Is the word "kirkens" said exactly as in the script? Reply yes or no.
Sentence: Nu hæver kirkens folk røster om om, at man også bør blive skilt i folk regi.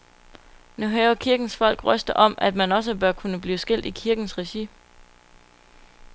yes